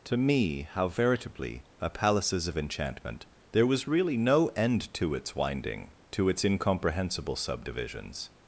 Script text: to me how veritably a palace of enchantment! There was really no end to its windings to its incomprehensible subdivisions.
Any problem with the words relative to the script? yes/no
yes